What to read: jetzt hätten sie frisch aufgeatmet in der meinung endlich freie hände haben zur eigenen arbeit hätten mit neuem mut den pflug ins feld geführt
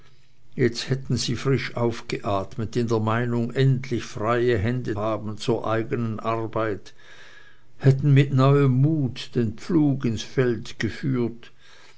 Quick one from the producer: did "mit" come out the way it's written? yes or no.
yes